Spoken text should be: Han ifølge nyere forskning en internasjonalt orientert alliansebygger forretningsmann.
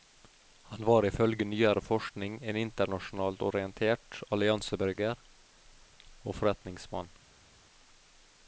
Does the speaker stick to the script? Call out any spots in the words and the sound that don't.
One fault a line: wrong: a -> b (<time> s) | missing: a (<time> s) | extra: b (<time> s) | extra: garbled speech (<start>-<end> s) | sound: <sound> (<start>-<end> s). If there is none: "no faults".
extra: var (0.8 s)
extra: og (6.2 s)